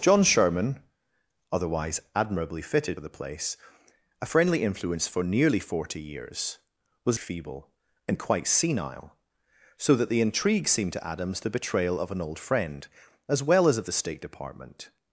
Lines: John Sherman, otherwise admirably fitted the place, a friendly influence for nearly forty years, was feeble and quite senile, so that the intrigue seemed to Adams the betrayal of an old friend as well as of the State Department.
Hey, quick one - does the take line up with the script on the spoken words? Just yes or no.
yes